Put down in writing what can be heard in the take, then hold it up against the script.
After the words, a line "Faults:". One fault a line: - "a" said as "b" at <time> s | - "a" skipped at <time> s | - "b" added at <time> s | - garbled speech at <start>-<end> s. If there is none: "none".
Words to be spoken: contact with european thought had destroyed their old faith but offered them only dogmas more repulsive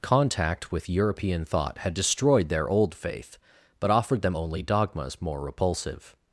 contact with european thought had destroyed their old faith but offered them only dogmas more repulsive
Faults:
none